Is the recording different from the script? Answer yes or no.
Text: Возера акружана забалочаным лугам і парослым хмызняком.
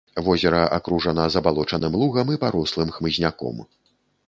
no